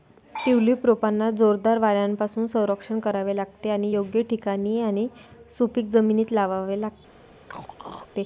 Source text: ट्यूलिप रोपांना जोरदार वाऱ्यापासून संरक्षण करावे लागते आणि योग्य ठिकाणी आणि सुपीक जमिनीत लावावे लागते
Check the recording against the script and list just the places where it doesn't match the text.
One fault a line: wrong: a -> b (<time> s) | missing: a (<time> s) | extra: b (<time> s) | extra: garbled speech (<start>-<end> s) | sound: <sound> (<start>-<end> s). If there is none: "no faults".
sound: throat clearing (7.5-8.1 s)